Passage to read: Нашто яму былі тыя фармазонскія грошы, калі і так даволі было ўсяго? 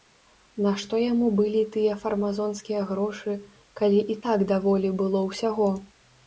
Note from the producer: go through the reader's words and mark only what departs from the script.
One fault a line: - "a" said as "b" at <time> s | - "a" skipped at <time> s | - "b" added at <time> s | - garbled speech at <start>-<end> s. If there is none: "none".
none